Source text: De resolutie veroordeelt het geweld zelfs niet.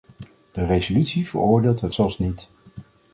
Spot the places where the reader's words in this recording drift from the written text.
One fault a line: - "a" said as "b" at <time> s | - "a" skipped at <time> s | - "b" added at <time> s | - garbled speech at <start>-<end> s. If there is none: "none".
- "geweld" skipped at 1.9 s